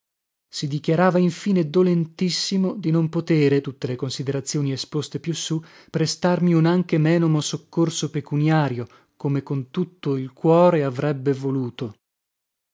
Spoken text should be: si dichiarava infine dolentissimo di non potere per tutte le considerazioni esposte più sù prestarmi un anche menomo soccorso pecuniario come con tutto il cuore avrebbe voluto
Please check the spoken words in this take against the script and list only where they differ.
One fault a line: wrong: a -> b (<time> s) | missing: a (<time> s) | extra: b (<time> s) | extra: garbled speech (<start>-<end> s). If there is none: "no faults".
missing: per (3.6 s)